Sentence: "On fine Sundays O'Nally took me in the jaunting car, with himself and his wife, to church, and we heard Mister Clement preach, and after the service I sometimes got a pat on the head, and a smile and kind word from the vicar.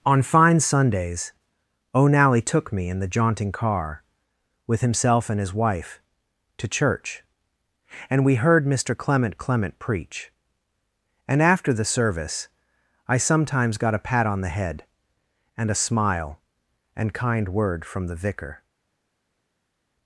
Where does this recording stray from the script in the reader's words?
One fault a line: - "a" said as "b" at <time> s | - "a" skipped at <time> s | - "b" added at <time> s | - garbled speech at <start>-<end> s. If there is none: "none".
- "Clement" added at 9.4 s